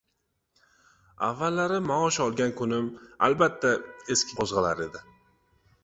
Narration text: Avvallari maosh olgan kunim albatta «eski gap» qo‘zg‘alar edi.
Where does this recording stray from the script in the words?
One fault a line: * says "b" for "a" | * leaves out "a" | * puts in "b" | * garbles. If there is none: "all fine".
* leaves out "gap"